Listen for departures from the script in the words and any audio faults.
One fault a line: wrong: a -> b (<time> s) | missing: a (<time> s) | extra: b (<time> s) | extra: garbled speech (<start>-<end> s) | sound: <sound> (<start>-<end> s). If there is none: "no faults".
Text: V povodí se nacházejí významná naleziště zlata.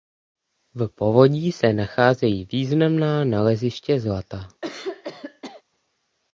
sound: throat clearing (4.6-5.6 s)